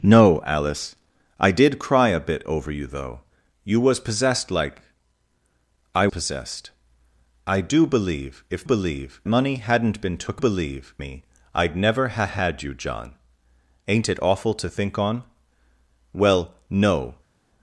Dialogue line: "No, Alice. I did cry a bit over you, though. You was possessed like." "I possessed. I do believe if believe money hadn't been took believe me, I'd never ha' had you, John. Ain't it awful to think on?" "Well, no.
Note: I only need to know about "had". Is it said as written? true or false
true